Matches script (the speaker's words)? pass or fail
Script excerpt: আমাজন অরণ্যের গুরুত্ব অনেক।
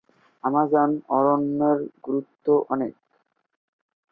pass